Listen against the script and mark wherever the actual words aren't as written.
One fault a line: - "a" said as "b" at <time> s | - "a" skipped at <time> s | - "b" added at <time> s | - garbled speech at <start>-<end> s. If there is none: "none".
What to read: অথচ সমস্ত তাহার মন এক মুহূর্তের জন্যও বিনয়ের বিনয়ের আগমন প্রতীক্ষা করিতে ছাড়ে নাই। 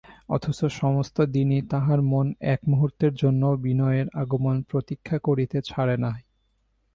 - "দিনই" added at 1.3 s
- "বিনয়ের" skipped at 4.1 s